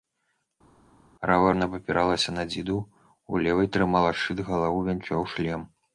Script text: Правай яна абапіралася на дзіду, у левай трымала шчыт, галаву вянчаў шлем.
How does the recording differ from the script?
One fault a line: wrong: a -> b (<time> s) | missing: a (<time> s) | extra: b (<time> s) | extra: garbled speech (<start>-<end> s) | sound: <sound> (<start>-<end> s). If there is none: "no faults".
no faults